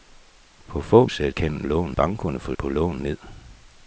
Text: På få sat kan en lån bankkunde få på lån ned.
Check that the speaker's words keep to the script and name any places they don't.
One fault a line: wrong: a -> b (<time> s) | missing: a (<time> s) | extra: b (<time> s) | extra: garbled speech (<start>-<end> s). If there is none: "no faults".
no faults